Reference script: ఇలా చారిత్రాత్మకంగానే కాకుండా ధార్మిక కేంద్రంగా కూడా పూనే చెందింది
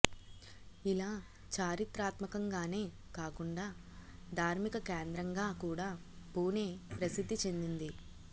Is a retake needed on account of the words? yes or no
yes